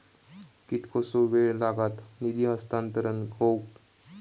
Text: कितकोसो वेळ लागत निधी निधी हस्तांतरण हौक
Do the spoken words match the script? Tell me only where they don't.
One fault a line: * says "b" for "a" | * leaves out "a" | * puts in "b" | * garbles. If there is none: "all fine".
* leaves out "निधी"